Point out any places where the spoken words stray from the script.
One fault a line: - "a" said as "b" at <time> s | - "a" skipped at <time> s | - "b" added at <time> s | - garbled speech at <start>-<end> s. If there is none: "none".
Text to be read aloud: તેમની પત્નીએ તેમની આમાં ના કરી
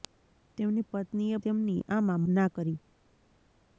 none